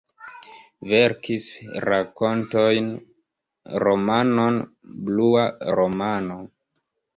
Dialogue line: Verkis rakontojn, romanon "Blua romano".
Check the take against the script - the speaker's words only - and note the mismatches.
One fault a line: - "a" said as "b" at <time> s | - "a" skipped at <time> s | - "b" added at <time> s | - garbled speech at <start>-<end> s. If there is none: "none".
none